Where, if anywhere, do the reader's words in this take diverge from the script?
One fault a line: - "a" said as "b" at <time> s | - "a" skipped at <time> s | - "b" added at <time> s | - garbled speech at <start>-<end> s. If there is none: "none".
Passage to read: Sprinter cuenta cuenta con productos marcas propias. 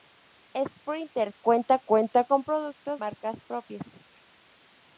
none